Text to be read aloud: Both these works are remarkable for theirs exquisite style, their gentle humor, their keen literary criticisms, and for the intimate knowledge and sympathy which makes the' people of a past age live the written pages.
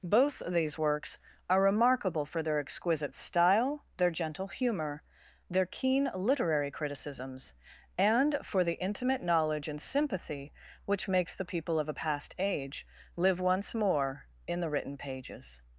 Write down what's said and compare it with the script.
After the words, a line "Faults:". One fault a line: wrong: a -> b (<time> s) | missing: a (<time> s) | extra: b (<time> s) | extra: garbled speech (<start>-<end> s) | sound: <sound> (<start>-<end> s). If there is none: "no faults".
Both these works are remarkable for their exquisite style, their gentle humor, their keen literary criticisms, and for the intimate knowledge and sympathy which makes the' people of a past age live once more in the written pages.
Faults:
wrong: theirs -> their (2.4 s)
extra: once more in (13.4 s)